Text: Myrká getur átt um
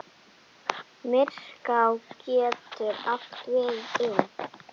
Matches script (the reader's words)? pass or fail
fail